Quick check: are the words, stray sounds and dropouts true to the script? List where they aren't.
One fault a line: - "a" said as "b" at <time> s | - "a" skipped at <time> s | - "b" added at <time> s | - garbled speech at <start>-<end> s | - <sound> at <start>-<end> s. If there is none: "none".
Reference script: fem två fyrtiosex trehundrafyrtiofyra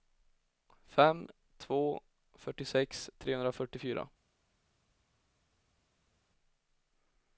none